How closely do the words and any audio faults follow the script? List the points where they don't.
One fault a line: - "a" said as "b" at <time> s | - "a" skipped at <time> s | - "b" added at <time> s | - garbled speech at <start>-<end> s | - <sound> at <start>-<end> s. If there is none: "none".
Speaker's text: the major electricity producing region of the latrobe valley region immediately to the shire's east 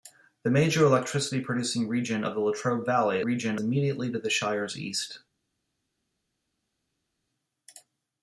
none